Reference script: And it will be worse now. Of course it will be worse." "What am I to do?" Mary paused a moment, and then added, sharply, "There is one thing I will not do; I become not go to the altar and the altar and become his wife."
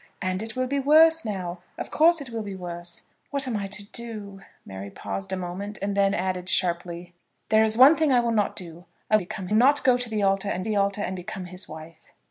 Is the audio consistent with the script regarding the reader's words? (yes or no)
yes